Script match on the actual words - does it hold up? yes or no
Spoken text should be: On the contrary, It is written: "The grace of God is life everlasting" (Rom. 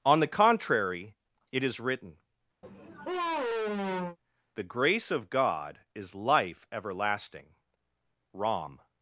yes